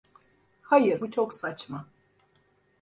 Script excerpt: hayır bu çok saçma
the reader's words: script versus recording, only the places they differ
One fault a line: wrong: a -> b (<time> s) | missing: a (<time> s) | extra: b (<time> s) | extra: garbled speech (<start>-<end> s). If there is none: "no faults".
no faults